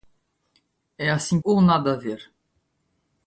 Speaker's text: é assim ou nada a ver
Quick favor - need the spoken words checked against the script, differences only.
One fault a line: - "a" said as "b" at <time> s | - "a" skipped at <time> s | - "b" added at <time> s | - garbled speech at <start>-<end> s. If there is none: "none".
none